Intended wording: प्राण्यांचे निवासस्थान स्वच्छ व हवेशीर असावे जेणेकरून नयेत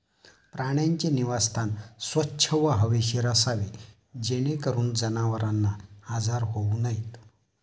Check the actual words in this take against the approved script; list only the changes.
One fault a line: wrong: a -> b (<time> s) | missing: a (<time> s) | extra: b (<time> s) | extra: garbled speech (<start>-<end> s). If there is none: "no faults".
extra: जनावरांना आजार होऊ (4.9 s)